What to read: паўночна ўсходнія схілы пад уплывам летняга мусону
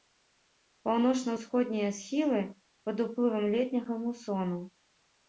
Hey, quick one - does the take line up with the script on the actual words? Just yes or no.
yes